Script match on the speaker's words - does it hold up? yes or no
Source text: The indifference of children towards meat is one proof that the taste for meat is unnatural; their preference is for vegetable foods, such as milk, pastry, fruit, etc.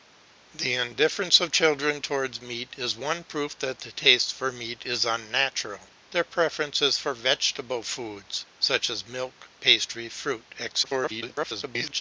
no